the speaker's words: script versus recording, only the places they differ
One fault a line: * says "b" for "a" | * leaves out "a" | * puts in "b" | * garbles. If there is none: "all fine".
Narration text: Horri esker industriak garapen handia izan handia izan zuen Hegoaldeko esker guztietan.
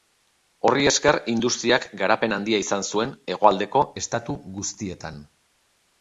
* leaves out "handia izan"
* says "estatu" for "esker"